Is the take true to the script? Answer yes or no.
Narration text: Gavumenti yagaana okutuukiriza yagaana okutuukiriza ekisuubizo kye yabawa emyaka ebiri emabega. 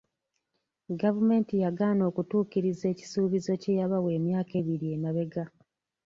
no